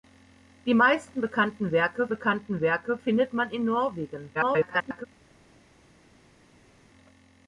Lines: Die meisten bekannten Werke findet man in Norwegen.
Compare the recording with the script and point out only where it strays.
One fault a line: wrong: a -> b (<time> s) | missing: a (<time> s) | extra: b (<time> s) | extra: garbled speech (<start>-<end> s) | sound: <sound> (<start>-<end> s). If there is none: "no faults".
extra: bekannten Werke (2.1 s)
extra: garbled speech (4.3-5.1 s)